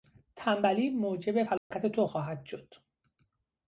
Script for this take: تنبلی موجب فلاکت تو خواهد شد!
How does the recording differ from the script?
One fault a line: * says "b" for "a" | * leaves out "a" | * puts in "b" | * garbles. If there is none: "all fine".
all fine